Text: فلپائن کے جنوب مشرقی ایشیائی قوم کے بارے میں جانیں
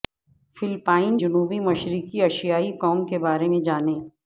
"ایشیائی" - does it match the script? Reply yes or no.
yes